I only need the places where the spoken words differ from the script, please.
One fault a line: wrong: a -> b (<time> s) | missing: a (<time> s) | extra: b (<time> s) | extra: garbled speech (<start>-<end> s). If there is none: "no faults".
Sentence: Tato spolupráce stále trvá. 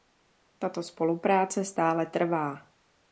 no faults